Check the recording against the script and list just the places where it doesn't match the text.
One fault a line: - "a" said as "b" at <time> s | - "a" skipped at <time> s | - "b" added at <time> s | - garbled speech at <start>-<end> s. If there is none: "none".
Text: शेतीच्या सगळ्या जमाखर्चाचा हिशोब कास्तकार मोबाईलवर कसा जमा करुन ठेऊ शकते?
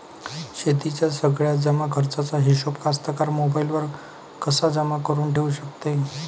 none